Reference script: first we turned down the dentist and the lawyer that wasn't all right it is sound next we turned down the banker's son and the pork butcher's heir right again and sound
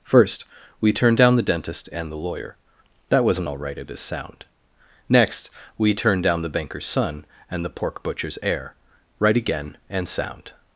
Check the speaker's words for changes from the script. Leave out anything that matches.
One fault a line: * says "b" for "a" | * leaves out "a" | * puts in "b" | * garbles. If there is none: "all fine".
all fine